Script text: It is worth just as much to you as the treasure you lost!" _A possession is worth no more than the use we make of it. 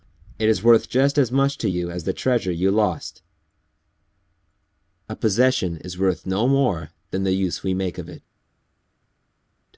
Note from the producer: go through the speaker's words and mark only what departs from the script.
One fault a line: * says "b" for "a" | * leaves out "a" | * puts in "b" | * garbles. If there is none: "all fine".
all fine